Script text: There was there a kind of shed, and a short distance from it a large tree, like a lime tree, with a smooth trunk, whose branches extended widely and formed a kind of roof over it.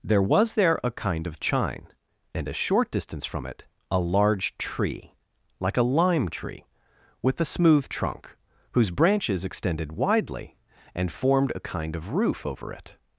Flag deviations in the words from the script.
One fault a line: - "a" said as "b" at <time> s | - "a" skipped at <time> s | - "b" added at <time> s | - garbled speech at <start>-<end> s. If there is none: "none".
- "shed" said as "chine" at 1.4 s